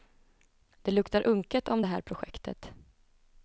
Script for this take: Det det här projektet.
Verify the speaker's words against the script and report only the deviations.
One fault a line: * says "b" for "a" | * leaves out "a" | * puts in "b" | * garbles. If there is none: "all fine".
* puts in "luktar unket om"